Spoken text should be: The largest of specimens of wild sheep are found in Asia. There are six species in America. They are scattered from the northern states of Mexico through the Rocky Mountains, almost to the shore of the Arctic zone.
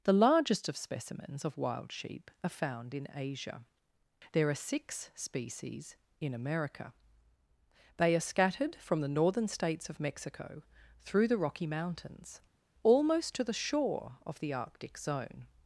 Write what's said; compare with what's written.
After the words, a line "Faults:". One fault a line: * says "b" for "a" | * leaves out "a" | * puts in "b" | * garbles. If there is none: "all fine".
The largest of specimens of wild sheep are found in Asia. There are six species in America. They are scattered from the northern states of Mexico through the Rocky Mountains, almost to the shore of the Arctic zone.
Faults:
all fine